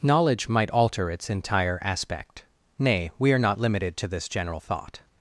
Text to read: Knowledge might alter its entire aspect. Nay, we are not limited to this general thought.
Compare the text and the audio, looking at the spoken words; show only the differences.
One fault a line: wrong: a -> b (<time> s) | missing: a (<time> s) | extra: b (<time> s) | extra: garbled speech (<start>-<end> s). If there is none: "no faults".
no faults